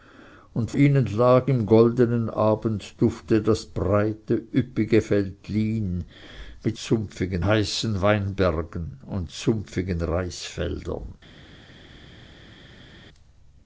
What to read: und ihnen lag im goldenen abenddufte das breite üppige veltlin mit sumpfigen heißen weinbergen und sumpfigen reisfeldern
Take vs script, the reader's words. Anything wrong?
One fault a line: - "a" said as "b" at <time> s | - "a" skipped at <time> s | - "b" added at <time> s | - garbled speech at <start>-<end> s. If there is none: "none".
none